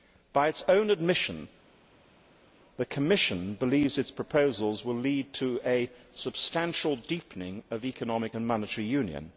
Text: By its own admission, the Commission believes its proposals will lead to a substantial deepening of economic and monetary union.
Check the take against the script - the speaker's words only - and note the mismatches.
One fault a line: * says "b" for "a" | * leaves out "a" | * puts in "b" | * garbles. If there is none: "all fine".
all fine